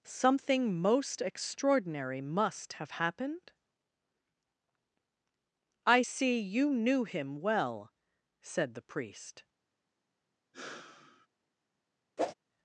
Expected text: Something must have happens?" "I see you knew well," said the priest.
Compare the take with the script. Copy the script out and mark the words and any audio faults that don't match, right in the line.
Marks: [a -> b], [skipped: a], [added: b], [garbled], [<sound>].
Something [added: most extraordinary] must have [happens?" -> happened] "I see you knew [added: him] well," said the priest. [sigh] [whoosh]